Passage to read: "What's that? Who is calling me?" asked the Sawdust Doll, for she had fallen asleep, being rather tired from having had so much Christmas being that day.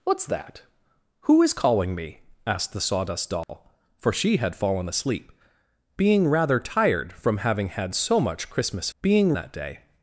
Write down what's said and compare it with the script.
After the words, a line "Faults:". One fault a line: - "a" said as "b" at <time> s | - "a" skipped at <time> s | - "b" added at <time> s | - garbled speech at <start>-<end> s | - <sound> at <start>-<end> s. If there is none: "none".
"What's that? Who is calling me?" asked the Sawdust Doll, for she had fallen asleep, being rather tired from having had so much Christmas being that day.
Faults:
- dropout at 3.4-3.5 s